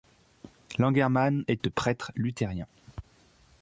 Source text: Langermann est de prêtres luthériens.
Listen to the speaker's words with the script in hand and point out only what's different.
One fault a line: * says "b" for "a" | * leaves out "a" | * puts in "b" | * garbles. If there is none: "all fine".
all fine